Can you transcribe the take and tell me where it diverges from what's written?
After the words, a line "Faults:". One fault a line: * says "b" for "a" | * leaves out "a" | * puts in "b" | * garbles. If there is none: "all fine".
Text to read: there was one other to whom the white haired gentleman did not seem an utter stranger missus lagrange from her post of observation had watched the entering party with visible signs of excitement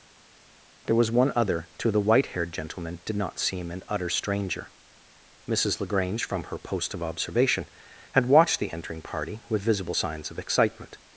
there was one other to the white haired gentleman did not seem an utter stranger missus lagrange from her post of observation had watched the entering party with visible signs of excitement
Faults:
* leaves out "whom"